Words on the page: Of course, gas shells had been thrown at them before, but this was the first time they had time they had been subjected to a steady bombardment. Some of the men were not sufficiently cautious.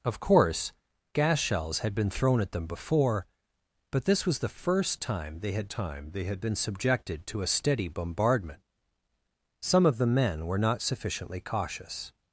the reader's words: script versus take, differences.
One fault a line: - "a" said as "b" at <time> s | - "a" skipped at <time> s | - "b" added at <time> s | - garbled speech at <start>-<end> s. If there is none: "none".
none